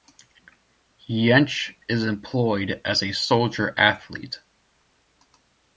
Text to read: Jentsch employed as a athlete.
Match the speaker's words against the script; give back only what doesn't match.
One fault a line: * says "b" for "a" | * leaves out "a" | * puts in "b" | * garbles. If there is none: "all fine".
* puts in "is"
* puts in "soldier"